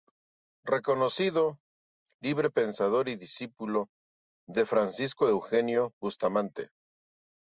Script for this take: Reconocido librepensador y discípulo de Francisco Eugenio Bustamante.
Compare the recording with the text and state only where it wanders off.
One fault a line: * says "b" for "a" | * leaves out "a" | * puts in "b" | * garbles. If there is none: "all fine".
all fine